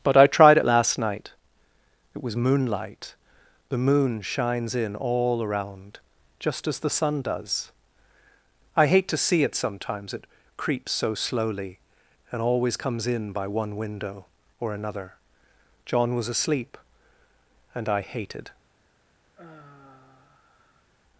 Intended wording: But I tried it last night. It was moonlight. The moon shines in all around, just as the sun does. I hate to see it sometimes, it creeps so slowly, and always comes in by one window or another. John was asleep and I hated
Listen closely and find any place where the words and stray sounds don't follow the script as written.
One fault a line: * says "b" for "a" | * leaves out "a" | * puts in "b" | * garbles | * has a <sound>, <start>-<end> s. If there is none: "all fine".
* has a sigh, 19.3-20.9 s